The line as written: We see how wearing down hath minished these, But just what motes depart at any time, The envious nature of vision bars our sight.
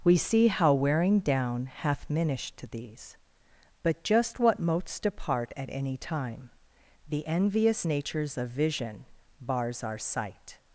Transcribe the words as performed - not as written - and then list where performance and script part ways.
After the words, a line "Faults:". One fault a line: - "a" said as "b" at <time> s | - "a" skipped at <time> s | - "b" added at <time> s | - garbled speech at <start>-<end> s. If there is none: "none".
We see how wearing down hath minished these, But just what motes depart at any time, The envious natures of vision bars our sight.
Faults:
- "nature" said as "natures" at 7.8 s